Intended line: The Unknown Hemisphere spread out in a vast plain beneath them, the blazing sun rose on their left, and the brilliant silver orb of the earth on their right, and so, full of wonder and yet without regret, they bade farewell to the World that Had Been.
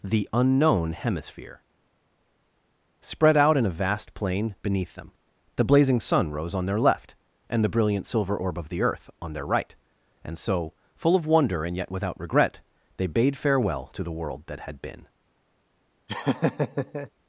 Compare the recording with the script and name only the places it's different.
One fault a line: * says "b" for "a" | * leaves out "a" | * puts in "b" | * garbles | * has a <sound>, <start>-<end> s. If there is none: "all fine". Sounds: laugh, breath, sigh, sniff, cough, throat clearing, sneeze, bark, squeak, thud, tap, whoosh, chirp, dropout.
* has a laugh, 16.1-17.1 s